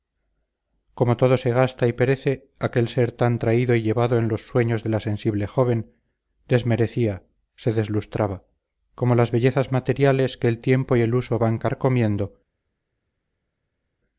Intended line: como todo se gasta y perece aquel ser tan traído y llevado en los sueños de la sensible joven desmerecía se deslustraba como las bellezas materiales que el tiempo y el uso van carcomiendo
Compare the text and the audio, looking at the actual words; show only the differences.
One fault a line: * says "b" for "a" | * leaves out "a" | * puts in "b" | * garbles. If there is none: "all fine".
all fine